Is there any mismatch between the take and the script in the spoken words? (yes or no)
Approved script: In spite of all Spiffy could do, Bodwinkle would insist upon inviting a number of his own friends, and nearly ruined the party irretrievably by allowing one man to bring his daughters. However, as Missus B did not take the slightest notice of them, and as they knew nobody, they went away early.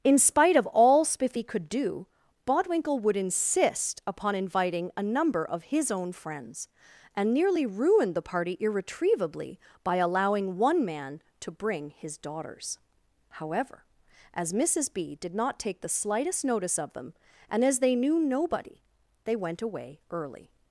no